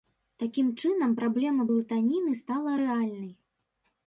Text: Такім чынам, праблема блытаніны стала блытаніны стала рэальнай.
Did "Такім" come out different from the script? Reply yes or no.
no